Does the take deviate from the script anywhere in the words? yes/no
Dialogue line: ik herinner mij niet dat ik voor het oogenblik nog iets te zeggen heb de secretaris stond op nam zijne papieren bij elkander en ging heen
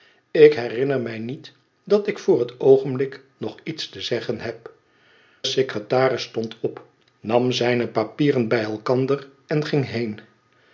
yes